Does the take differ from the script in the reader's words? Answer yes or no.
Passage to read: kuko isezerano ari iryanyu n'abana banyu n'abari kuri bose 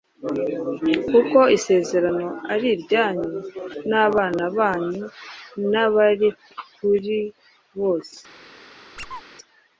no